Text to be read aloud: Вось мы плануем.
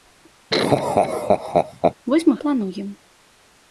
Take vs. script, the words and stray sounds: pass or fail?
fail